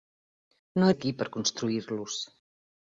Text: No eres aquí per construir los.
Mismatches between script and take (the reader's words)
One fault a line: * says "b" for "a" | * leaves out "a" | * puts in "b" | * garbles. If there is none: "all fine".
* leaves out "eres"